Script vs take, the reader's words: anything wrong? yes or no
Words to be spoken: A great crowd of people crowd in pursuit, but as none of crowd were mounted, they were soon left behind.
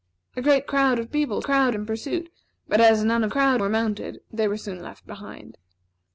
no